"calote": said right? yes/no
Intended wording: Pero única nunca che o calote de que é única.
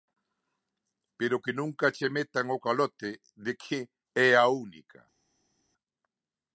yes